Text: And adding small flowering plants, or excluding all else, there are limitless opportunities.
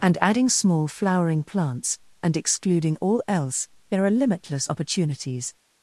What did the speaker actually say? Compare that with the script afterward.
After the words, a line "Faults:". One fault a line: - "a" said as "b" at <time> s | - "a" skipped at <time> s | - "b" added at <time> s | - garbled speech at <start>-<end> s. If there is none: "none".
And adding small flowering plants, and excluding all else, there are limitless opportunities.
Faults:
- "or" said as "and" at 2.2 s